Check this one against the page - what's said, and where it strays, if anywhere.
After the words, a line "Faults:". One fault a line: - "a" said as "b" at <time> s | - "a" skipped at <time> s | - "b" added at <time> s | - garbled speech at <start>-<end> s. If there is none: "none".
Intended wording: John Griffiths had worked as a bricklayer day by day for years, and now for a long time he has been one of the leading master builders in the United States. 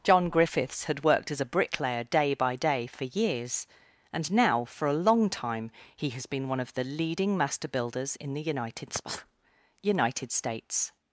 John Griffiths had worked as a bricklayer day by day for years, and now for a long time he has been one of the leading master builders in the United United States.
Faults:
- "United" added at 9.8 s